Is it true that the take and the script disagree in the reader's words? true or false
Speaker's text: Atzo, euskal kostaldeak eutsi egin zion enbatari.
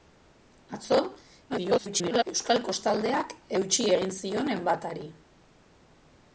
true